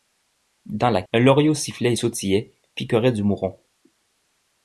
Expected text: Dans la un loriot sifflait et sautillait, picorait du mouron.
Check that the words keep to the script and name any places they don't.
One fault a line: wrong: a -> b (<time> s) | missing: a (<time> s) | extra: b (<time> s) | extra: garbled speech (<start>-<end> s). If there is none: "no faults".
no faults